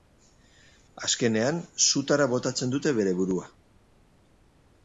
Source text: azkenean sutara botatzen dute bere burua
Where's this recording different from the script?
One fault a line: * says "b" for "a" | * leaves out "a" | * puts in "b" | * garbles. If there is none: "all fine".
all fine